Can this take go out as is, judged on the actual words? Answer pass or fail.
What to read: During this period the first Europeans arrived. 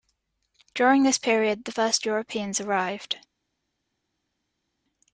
pass